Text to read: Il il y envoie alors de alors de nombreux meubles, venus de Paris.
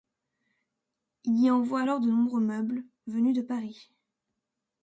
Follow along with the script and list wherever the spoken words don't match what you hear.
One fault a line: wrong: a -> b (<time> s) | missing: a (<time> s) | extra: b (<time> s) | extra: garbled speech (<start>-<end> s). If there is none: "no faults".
missing: il (1.4 s)
missing: alors de (2.1 s)